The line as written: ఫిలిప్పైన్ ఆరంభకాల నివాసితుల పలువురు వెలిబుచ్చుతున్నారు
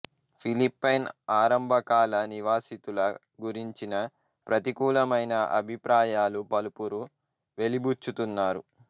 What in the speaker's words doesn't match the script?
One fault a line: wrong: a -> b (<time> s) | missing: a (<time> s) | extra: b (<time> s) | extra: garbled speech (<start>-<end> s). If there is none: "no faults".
extra: గురించిన ప్రతికూలమైన అభిప్రాయాలు (3.4 s)